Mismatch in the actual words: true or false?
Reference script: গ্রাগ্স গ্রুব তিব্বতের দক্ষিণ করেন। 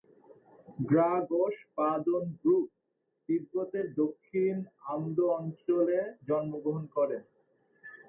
true